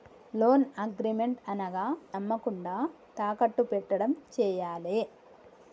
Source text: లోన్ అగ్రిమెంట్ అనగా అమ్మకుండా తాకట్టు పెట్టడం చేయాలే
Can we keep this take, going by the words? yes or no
yes